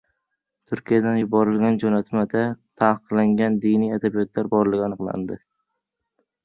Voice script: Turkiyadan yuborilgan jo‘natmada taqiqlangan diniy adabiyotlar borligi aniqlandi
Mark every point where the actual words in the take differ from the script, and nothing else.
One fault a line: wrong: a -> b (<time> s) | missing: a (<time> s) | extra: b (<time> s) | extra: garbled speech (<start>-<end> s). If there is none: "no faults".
no faults